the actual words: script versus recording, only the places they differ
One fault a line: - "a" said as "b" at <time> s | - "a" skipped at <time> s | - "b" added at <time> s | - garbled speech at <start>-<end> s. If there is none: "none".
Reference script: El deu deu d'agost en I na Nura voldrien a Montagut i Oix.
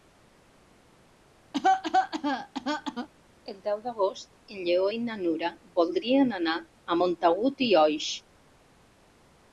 - "deu" skipped at 3.8 s
- "Lleó" added at 4.7 s
- "anar" added at 6.4 s